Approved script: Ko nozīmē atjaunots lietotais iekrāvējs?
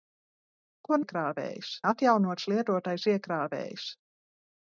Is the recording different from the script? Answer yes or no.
yes